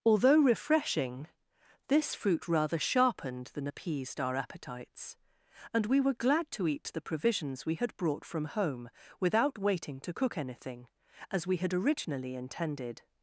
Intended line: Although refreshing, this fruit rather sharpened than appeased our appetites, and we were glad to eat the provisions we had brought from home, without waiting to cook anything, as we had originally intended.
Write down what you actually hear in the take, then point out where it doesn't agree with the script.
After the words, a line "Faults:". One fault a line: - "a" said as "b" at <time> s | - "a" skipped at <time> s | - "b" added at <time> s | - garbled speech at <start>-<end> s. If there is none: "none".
Although refreshing, this fruit rather sharpened than appeased our appetites, and we were glad to eat the provisions we had brought from home, without waiting to cook anything, as we had originally intended.
Faults:
none